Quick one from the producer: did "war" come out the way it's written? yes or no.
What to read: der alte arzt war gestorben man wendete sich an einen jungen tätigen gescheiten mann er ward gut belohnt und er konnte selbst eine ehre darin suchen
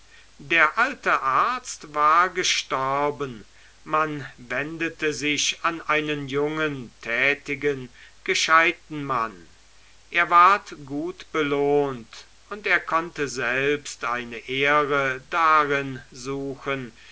yes